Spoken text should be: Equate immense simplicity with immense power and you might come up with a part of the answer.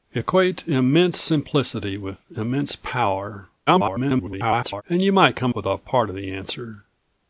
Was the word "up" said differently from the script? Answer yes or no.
yes